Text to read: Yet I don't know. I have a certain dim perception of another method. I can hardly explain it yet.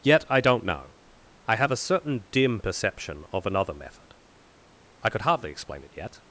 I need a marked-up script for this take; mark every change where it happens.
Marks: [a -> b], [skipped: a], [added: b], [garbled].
Yet I don't know. I have a certain dim perception of another method. I [can -> could] hardly explain it yet.